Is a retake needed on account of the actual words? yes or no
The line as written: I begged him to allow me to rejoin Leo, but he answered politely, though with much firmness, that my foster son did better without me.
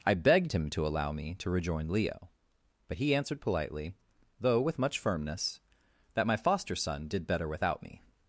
no